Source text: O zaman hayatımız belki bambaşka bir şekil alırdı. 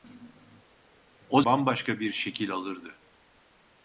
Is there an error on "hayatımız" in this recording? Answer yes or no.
yes